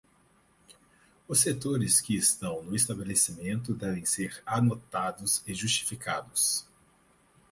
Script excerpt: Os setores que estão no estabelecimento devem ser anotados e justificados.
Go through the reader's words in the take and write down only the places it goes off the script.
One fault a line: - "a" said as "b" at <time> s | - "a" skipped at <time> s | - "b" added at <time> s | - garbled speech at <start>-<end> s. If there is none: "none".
none